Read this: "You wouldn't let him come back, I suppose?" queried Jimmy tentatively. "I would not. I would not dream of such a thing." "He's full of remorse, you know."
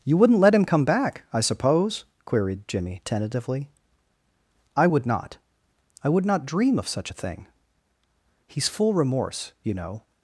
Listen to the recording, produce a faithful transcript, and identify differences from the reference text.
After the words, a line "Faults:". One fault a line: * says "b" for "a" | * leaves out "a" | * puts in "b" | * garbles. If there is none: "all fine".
"You wouldn't let him come back, I suppose?" queried Jimmy tentatively. "I would not. I would not dream of such a thing." "He's full remorse, you know."
Faults:
* leaves out "of"